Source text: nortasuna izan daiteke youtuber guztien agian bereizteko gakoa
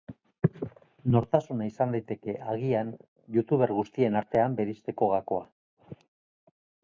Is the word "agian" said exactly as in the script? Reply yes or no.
no